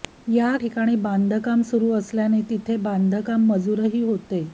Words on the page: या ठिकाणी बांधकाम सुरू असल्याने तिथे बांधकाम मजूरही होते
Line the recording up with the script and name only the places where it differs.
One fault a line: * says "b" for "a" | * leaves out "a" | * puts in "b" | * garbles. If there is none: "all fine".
all fine